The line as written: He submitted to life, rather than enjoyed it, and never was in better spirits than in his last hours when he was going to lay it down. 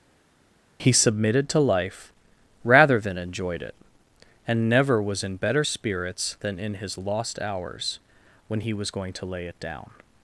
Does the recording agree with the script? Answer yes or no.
no